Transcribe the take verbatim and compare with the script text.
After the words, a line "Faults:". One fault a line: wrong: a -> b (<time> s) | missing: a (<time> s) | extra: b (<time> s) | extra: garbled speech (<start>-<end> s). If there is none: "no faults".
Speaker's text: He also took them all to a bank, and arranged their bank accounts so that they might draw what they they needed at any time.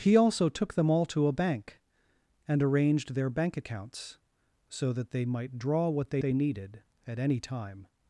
He also took them all to a bank, and arranged their bank accounts so that they might draw what they they needed at any time.
Faults:
no faults